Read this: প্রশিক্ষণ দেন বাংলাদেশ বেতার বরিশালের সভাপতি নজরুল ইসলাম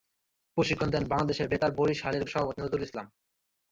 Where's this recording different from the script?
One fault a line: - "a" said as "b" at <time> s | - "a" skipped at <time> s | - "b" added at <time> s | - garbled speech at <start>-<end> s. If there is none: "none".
none